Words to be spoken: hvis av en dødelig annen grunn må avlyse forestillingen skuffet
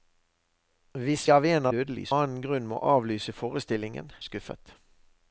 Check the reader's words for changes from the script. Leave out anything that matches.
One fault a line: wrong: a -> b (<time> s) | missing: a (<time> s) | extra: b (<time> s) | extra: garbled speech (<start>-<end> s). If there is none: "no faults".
no faults